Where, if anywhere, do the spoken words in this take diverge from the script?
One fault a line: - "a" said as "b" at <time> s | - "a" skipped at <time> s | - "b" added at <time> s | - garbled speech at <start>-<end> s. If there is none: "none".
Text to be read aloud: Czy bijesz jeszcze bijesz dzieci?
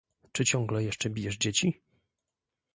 - "bijesz" said as "ciągle" at 0.4 s